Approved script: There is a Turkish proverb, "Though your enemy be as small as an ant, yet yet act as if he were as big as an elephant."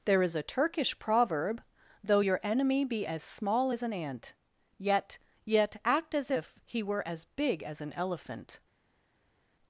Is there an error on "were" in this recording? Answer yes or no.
no